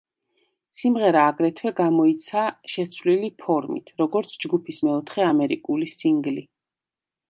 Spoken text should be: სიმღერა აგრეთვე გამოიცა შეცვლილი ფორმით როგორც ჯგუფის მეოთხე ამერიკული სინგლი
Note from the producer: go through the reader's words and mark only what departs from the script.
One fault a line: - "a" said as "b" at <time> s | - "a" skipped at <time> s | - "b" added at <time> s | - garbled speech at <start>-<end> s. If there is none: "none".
none